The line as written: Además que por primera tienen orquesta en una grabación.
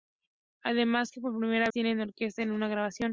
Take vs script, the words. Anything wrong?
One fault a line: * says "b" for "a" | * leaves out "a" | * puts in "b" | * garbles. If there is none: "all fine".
all fine